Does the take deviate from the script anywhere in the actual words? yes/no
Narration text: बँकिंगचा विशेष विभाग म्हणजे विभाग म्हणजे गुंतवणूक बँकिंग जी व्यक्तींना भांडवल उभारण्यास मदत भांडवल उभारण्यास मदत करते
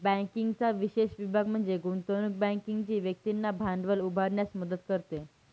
yes